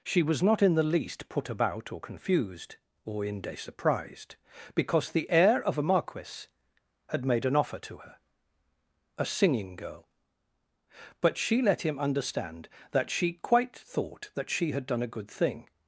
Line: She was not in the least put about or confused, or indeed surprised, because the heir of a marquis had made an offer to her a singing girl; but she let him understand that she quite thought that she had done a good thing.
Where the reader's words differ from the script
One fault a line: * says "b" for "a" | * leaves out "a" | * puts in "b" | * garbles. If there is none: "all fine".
* says "inde" for "indeed"